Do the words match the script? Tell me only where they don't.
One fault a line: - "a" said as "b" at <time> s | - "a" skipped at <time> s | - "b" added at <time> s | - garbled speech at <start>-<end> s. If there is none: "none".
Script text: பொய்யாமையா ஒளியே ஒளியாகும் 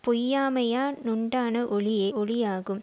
- "னுண்டான" added at 1.1 s